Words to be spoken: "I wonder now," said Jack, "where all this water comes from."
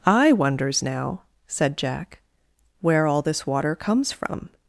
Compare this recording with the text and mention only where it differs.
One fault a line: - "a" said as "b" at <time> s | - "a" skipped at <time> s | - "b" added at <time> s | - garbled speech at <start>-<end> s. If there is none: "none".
- "wonder" said as "wonders" at 0.3 s